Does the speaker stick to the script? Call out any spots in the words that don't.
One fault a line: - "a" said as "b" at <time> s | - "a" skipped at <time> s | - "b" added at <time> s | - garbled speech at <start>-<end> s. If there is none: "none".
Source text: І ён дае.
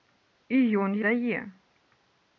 none